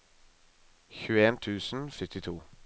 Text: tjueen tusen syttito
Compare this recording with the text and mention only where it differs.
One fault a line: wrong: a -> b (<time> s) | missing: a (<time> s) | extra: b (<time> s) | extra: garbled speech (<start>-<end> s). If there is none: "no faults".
no faults